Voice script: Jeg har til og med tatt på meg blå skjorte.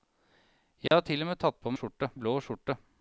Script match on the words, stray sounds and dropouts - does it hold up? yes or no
no